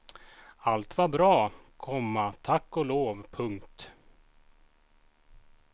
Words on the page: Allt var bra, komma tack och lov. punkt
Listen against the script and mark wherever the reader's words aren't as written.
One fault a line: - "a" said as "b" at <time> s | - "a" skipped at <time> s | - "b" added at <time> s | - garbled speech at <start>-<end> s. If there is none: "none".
none